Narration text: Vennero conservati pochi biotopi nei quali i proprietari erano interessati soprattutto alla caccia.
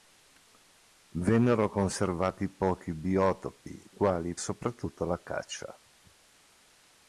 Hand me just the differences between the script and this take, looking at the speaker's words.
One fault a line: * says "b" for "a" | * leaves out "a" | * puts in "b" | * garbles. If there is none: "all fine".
* leaves out "nei"
* leaves out "proprietari erano interessati"